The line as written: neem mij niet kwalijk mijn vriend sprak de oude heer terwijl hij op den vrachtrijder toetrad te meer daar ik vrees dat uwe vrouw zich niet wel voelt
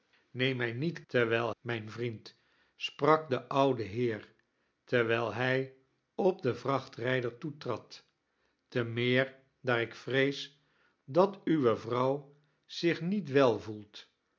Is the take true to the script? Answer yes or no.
no